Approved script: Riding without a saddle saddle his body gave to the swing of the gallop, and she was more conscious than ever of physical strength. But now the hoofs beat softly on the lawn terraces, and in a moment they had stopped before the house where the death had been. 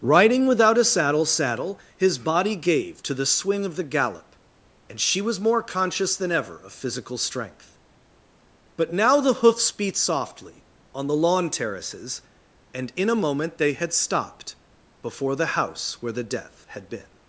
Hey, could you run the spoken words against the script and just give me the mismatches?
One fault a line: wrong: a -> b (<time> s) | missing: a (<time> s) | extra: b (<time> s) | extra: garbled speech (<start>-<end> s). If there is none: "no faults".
no faults